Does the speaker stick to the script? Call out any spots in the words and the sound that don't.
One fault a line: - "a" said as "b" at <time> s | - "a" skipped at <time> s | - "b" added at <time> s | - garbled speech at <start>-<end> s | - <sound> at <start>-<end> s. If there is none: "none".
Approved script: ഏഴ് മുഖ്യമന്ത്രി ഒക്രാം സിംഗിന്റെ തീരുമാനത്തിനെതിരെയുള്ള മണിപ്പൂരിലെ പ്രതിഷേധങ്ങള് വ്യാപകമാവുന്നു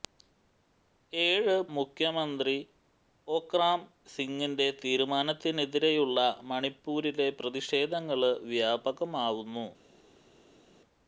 none